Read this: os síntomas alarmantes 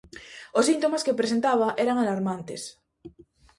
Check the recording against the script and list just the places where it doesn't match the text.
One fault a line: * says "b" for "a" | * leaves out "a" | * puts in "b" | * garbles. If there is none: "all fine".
* puts in "que presentaba eran"